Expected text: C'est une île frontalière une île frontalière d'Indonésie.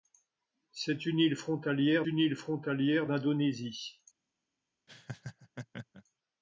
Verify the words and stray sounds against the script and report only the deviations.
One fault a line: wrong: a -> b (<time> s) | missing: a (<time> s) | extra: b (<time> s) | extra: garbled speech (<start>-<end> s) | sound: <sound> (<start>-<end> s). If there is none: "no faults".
sound: laugh (4.9-6.0 s)